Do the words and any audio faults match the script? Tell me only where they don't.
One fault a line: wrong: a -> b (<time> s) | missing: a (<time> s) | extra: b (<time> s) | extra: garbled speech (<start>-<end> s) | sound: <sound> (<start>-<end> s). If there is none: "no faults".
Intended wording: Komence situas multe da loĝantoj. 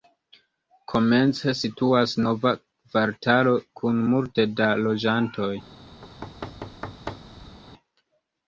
extra: nova kvartalo kun (2.3 s)
sound: thud (6.0-7.6 s)